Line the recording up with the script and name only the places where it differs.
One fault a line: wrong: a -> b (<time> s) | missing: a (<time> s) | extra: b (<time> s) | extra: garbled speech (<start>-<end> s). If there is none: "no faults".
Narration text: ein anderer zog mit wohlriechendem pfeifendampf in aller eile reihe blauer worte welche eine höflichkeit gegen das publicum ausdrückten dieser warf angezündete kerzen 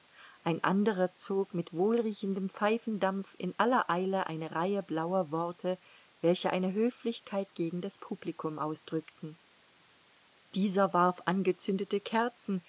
extra: eine (4.3 s)